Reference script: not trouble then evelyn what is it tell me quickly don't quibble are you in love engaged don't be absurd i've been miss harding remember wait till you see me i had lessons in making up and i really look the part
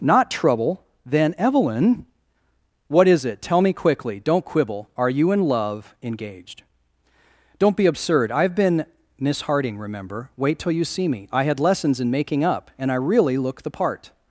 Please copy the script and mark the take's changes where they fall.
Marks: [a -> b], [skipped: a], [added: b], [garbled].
not trouble then evelyn what is it tell me quickly don't quibble are you in love engaged don't be absurd i've been miss harding remember wait till you see me i had lessons in making up and i really look the part